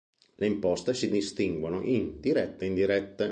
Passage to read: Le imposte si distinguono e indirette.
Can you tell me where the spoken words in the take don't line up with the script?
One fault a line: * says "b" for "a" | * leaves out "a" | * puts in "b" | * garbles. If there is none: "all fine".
* puts in "in dirette"